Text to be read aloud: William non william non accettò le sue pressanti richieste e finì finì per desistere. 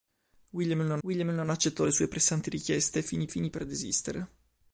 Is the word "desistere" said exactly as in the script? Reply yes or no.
yes